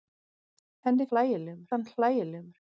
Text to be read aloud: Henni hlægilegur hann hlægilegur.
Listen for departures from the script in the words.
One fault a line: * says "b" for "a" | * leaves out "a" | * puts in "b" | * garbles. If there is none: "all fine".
all fine